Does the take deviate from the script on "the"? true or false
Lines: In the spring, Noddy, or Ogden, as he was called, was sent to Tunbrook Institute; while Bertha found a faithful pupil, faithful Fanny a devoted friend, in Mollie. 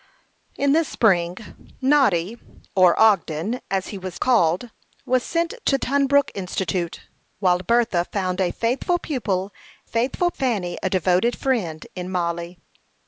false